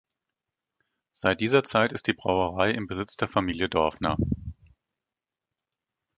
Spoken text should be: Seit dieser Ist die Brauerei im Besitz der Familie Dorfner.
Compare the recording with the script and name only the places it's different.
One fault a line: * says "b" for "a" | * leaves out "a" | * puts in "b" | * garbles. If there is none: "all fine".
* puts in "Zeit"